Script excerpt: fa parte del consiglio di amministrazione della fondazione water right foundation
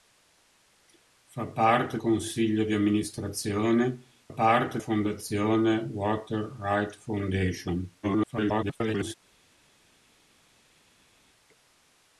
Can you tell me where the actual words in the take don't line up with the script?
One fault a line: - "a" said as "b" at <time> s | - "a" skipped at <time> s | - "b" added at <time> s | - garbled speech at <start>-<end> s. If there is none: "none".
- "del" skipped at 2.0 s
- "della" said as "parte" at 4.3 s
- garbled speech at 8.0-9.1 s